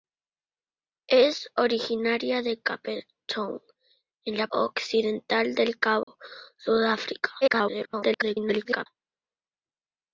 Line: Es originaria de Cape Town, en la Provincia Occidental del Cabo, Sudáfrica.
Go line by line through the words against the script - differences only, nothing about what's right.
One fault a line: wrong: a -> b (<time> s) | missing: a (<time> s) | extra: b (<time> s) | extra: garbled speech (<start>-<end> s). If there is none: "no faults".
missing: Provincia (4.5 s)
extra: garbled speech (7.4-8.9 s)